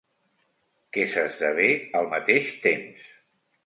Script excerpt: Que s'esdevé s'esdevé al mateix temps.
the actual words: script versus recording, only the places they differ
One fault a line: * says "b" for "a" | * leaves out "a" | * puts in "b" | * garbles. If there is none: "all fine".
* leaves out "s'esdevé"